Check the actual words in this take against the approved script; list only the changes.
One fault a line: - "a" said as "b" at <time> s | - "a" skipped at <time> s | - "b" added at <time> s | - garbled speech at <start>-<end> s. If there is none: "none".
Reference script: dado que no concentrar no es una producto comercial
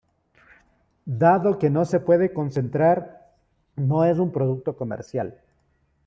- "se puede" added at 1.9 s
- "una" said as "un" at 4.2 s